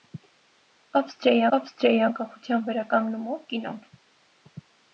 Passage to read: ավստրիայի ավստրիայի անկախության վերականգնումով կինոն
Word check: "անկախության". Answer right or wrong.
right